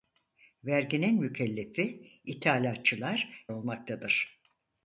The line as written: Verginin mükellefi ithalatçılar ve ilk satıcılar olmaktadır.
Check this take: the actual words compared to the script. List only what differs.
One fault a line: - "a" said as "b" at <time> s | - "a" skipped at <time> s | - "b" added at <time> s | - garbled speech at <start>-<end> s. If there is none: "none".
- "ve ilk satıcılar" skipped at 3.5 s